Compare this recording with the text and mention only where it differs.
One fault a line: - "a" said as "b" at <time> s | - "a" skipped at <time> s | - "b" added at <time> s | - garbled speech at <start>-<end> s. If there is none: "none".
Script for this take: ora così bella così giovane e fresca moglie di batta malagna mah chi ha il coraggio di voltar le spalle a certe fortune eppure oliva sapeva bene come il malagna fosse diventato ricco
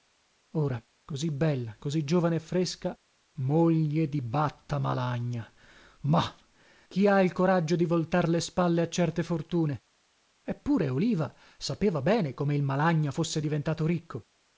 none